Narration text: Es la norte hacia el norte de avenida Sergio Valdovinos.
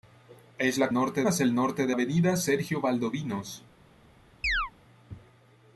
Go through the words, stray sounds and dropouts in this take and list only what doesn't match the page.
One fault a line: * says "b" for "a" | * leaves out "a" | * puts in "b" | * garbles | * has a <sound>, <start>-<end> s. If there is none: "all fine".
* has a chirp, 4.4-4.7 s